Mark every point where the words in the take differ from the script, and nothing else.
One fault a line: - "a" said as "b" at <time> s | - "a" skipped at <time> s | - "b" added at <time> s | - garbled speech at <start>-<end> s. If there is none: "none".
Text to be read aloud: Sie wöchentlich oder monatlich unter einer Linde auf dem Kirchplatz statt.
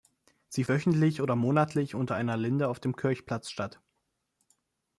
none